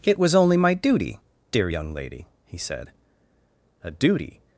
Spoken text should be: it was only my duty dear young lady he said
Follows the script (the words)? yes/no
no